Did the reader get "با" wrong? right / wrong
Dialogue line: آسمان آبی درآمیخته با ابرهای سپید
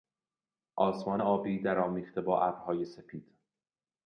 right